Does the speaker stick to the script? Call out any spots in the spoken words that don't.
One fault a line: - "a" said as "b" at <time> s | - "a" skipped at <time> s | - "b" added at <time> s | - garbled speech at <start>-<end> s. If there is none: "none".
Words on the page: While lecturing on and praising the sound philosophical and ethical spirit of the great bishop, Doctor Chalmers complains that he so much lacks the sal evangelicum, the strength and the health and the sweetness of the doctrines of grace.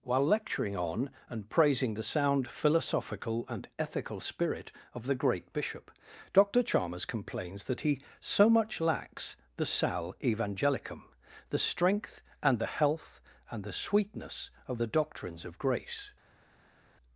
none